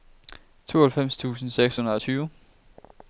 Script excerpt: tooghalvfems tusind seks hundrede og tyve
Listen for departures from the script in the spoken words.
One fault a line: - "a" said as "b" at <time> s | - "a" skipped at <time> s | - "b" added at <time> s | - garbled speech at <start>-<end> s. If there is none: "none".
none